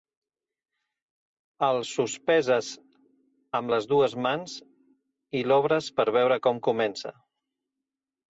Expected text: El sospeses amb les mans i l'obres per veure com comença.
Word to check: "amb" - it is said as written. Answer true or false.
true